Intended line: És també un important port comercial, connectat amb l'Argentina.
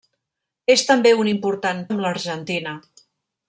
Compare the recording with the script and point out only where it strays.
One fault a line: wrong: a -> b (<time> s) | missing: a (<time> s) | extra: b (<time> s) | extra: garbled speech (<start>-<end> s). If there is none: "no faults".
missing: port comercial connectat (1.8 s)